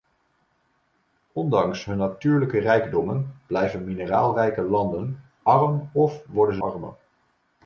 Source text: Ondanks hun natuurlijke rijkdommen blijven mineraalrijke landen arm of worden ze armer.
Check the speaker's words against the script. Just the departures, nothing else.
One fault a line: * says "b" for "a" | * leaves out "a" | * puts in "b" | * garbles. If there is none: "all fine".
all fine